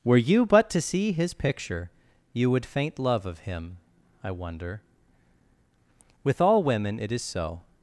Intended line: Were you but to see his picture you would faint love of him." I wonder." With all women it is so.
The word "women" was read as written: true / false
true